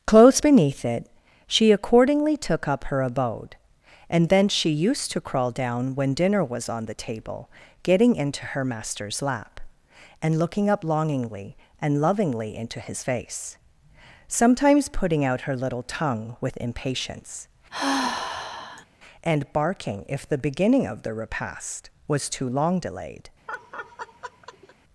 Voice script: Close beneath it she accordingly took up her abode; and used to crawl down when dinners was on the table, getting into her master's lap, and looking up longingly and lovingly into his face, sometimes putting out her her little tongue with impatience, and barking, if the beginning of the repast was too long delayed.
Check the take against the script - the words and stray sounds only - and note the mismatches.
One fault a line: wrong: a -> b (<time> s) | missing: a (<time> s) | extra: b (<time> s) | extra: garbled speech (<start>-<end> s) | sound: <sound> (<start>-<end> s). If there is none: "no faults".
extra: thence she (4.3 s)
wrong: dinners -> dinner (6.1 s)
missing: her (15.6 s)
sound: sigh (17.7-18.9 s)
sound: laugh (23.5-24.8 s)